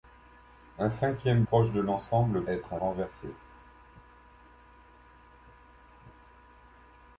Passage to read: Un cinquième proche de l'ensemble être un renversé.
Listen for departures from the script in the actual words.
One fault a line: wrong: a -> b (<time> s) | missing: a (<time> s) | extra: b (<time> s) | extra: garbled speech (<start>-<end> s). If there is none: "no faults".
no faults